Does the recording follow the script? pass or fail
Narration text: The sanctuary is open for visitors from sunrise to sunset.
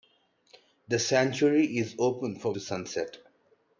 fail